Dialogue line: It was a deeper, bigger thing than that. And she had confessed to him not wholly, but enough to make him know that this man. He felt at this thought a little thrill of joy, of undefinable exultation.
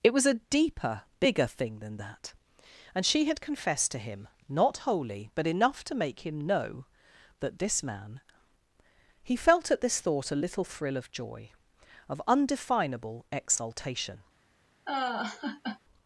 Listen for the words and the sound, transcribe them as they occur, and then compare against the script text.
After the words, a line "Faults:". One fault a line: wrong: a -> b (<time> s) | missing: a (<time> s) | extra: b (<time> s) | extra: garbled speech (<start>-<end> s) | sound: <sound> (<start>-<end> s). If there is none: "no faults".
It was a deeper, bigger thing than that. And she had confessed to him not wholly, but enough to make him know that this man. He felt at this thought a little thrill of joy, of undefinable exultation.
Faults:
sound: laugh (14.9-15.8 s)